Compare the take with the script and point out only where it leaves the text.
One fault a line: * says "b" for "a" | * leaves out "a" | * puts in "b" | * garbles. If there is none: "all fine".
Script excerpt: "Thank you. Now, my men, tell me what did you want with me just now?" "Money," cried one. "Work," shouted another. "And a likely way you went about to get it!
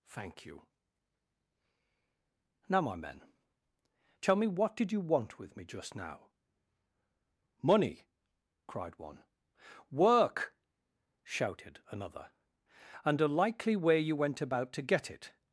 all fine